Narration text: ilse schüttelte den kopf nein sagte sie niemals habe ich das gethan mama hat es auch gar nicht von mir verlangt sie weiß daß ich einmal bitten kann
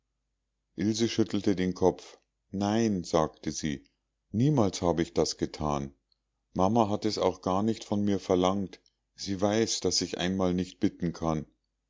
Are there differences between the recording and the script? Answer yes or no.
yes